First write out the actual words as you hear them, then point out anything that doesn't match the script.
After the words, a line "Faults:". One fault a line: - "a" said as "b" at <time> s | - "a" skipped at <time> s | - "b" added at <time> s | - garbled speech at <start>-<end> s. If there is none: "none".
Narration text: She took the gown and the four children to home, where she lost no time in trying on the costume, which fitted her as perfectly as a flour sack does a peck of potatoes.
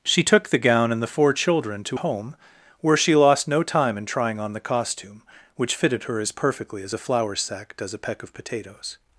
She took the gown and the four children to home, where she lost no time in trying on the costume, which fitted her as perfectly as a flour sack does a peck of potatoes.
Faults:
none